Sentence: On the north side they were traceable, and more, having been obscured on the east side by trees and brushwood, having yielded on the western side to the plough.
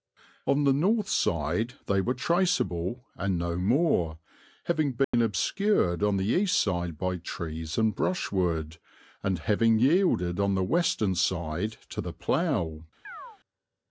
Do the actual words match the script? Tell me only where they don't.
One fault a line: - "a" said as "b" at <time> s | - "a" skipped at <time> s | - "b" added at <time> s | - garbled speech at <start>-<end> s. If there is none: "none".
- "no" added at 3.4 s
- "and" added at 9.2 s